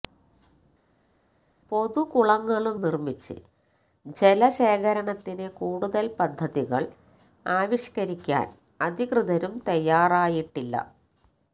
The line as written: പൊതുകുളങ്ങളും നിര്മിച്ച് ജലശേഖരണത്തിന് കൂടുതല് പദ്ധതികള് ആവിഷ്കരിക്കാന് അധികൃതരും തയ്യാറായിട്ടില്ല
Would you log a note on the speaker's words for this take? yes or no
no